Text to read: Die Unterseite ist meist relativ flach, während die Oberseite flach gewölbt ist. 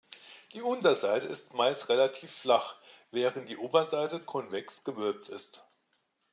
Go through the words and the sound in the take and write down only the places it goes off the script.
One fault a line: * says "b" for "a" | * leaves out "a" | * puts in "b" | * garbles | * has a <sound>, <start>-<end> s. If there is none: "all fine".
* says "konvex" for "flach"